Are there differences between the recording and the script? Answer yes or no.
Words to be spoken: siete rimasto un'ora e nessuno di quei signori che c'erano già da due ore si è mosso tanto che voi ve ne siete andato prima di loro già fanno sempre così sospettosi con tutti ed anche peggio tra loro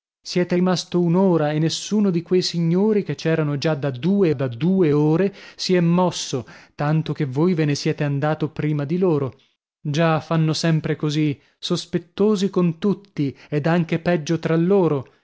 yes